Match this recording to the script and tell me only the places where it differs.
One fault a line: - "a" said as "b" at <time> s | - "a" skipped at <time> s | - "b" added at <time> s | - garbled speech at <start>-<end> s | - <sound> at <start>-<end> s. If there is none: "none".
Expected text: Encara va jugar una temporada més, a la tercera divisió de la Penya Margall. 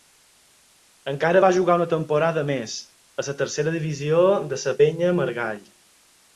none